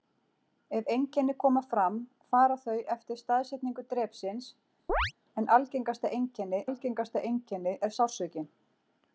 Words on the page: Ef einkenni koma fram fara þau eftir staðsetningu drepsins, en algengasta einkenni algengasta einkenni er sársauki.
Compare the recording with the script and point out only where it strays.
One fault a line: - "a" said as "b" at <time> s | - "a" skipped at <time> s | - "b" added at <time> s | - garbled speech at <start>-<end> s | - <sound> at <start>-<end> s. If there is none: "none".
- chirp at 4.9-5.1 s